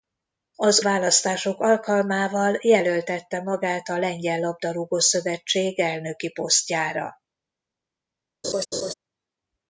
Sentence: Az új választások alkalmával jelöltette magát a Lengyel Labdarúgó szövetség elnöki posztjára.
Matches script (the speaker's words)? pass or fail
fail